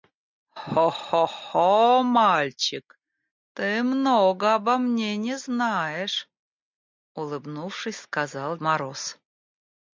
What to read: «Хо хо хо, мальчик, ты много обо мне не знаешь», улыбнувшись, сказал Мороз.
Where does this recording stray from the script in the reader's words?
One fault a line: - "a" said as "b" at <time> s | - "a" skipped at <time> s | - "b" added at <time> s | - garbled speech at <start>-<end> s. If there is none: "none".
none